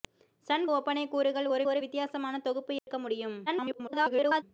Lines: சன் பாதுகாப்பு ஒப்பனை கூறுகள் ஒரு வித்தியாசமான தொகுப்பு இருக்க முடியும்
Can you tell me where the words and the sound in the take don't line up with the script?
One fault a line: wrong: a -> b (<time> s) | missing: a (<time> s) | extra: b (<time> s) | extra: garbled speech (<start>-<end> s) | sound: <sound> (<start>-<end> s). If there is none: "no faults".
missing: பாதுகாப்பு (0.7 s)
extra: ஒரு (1.7 s)
sound: dropout (2.8-2.9 s)
extra: garbled speech (3.5-4.4 s)